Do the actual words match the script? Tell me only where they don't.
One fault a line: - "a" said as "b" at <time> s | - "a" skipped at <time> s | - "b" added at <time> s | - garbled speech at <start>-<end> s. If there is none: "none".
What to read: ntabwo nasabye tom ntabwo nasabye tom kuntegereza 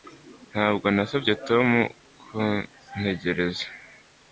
- "ntabwo nasabye tom" skipped at 1.7 s